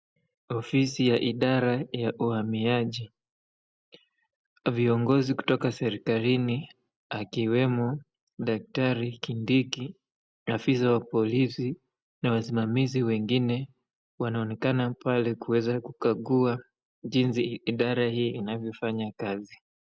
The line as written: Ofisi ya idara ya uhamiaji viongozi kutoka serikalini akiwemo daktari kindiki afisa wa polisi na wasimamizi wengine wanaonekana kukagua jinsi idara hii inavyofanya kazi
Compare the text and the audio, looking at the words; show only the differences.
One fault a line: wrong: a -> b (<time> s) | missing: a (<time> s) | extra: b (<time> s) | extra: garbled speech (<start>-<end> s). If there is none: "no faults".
extra: pale kuweza (14.9 s)